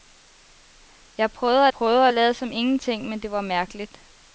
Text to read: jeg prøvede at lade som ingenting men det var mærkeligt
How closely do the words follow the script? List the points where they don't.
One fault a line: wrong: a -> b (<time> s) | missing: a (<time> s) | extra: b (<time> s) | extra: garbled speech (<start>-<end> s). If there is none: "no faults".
extra: prøvede (1.7 s)